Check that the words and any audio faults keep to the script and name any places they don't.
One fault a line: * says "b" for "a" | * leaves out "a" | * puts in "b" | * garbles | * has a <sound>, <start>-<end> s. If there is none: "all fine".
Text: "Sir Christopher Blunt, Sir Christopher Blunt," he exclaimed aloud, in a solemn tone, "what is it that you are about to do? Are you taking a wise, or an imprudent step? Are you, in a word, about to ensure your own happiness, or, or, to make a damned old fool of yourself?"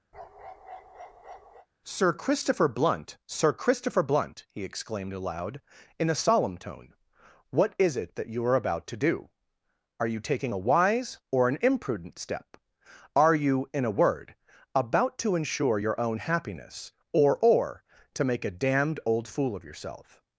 * has a bark, 0.1-1.7 s